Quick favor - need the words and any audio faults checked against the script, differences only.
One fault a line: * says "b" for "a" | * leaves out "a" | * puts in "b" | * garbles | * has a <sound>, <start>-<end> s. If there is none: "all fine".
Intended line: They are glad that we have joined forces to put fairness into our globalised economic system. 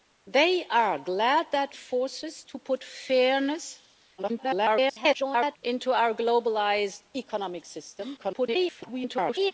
* leaves out "we have joined"
* garbles
* garbles